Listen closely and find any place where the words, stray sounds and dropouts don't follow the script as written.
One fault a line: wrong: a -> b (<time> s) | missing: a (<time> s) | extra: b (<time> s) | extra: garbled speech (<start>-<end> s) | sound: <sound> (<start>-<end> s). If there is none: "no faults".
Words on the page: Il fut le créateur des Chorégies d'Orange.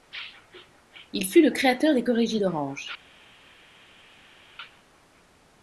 no faults